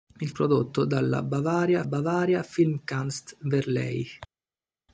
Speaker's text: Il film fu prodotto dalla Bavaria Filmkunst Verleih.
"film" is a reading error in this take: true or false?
true